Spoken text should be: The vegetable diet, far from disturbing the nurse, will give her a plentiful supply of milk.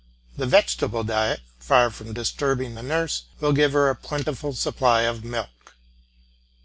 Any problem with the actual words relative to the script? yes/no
no